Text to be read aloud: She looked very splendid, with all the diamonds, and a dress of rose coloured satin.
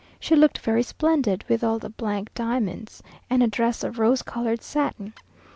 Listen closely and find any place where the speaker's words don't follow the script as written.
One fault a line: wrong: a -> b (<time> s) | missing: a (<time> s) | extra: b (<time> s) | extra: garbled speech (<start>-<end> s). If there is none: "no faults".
no faults